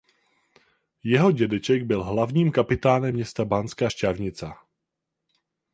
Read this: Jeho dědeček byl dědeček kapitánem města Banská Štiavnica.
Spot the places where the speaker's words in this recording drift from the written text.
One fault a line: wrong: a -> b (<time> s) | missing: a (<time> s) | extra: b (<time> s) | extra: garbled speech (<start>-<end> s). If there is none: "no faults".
wrong: dědeček -> hlavním (2.0 s)